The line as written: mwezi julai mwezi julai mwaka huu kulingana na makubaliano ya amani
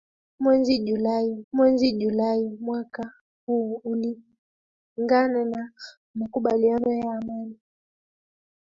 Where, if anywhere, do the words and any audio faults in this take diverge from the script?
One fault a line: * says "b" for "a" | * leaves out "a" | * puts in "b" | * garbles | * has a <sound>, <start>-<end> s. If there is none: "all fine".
all fine